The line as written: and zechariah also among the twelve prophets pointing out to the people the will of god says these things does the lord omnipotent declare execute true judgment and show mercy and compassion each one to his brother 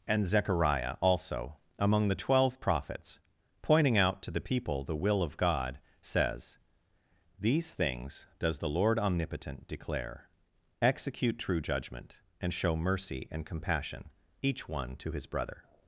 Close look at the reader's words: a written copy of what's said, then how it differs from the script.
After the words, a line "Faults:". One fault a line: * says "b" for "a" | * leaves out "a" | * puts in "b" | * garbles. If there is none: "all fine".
and zechariah also among the twelve prophets pointing out to the people the will of god says these things does the lord omnipotent declare execute true judgment and show mercy and compassion each one to his brother
Faults:
all fine